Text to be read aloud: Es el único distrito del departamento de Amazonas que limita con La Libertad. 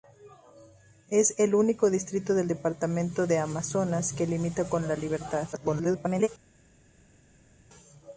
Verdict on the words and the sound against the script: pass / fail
fail